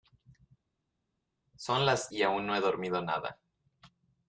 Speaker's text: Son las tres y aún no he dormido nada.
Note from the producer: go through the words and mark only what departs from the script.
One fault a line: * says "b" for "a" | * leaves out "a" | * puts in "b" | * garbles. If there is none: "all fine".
* leaves out "tres"